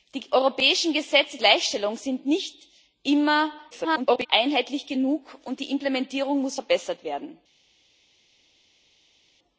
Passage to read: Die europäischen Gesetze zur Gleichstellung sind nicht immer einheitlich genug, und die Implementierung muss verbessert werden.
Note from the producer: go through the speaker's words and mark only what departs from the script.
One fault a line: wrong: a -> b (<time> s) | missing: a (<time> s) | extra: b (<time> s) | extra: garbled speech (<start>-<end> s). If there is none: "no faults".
missing: zur (1.4 s)
extra: garbled speech (3.7-4.3 s)